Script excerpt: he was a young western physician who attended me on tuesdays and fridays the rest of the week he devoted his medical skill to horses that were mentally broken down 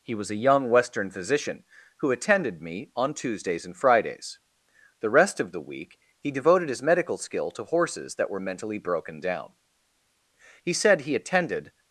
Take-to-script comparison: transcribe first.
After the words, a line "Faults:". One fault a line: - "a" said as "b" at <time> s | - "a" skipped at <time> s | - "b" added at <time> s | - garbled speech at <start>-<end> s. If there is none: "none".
he was a young western physician who attended me on tuesdays and fridays the rest of the week he devoted his medical skill to horses that were mentally broken down he said he attended
Faults:
- "he said he attended" added at 10.6 s